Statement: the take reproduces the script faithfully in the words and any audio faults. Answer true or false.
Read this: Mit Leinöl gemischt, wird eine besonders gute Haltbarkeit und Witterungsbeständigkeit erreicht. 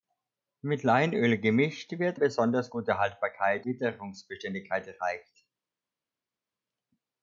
false